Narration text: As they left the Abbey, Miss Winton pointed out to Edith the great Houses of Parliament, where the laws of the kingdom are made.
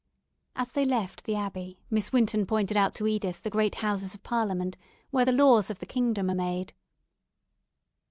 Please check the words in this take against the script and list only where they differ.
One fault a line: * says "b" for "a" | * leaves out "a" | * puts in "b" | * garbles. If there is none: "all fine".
all fine